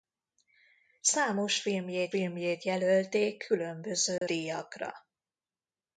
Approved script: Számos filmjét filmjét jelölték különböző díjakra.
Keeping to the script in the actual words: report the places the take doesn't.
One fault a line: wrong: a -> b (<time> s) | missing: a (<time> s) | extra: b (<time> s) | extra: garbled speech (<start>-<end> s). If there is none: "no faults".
no faults